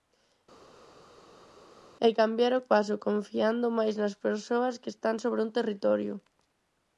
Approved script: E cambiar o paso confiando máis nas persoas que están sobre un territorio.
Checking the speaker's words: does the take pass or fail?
pass